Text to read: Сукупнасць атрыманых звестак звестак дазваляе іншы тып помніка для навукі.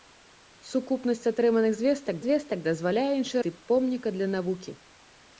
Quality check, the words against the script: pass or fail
pass